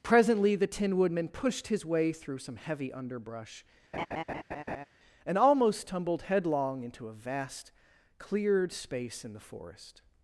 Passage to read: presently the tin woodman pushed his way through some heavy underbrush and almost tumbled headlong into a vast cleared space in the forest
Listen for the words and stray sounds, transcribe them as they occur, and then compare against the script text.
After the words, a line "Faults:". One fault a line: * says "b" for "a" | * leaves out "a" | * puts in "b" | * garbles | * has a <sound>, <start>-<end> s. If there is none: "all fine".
presently the tin woodman pushed his way through some heavy underbrush and almost tumbled headlong into a vast cleared space in the forest
Faults:
* has a laugh, 3.9-4.9 s